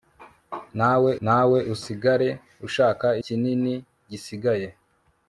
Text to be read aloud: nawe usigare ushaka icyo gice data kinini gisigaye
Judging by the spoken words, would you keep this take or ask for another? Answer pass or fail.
fail